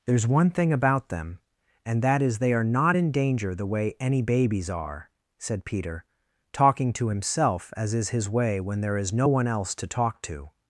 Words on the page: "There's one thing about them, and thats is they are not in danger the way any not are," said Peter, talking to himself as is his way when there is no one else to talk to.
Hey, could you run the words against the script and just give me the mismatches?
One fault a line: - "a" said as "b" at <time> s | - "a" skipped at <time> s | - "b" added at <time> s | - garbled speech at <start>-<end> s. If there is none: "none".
- "thats" said as "that" at 2.0 s
- "not" said as "babies" at 4.2 s